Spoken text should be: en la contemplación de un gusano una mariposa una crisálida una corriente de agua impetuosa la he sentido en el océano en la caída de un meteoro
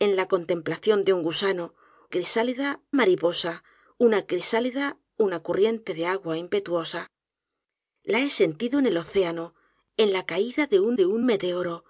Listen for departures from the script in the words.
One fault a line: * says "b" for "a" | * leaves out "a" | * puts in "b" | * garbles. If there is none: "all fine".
* says "crisálida" for "una"
* puts in "de un"